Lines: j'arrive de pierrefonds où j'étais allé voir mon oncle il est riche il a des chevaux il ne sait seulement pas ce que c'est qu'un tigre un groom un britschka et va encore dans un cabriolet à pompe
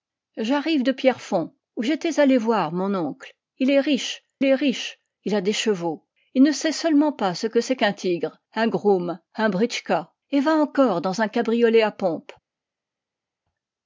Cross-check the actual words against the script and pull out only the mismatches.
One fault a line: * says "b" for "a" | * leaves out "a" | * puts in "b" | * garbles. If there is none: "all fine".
* puts in "est riche"